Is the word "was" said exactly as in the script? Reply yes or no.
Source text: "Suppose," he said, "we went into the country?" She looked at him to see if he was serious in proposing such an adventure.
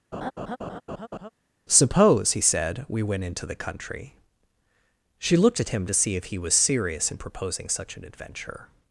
yes